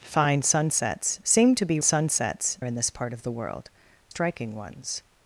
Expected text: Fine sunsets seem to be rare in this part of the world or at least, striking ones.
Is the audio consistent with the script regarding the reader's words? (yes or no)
no